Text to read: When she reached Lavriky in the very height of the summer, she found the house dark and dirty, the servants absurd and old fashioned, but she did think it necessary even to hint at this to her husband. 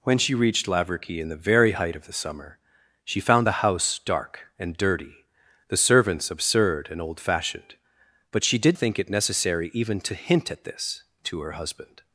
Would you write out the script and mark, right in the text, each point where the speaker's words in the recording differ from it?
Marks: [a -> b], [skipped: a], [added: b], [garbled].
When she reached Lavriky in the very height of the summer, she found the house dark and dirty, the servants absurd and old fashioned, but she did think it necessary even to hint at this to her husband.